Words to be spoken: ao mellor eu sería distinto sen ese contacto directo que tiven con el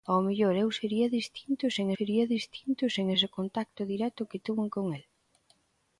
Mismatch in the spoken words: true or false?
true